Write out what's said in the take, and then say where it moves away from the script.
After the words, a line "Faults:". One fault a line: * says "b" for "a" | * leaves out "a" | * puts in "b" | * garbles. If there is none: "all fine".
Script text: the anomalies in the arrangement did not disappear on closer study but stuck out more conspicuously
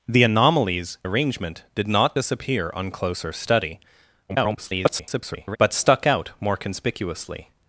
the anomalies arrangement did not disappear on closer study [garbled] but stuck out more conspicuously
Faults:
* leaves out "in the"
* garbles